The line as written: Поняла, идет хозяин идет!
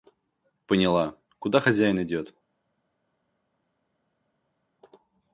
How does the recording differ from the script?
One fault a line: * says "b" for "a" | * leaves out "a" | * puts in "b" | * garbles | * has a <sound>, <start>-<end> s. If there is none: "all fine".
* says "куда" for "идет"